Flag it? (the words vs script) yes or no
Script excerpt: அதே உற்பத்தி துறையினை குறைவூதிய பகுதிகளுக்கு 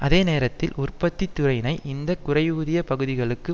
yes